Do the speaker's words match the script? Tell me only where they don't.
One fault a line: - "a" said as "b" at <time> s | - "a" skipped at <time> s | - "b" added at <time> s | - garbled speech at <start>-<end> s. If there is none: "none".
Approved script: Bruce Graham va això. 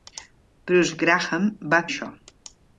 none